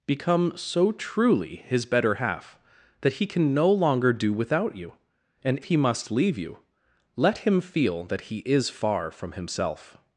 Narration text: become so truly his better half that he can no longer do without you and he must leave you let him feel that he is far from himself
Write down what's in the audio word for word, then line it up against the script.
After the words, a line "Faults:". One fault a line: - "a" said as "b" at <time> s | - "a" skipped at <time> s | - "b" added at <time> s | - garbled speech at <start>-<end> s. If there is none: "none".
become so truly his better half that he can no longer do without you and he must leave you let him feel that he is far from himself
Faults:
none